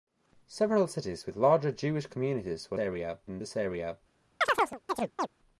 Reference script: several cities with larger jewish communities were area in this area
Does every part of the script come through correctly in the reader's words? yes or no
yes